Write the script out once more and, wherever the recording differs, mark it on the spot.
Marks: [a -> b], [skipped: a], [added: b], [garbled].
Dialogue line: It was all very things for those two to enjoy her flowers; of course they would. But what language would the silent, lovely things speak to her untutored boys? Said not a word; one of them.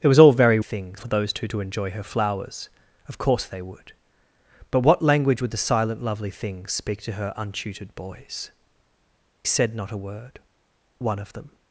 It was all very things for those two to enjoy her flowers; of course they would. But what language would the silent, lovely things speak to her untutored boys? Said not a word; one of them.